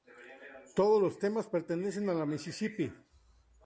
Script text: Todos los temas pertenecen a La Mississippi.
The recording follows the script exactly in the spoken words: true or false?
true